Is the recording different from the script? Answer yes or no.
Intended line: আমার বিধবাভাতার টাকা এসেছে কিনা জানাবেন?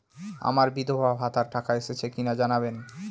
no